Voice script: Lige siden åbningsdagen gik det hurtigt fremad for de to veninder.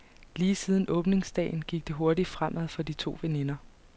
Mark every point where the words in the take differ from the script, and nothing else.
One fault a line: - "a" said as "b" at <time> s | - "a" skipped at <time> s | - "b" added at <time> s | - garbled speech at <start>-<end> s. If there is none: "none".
none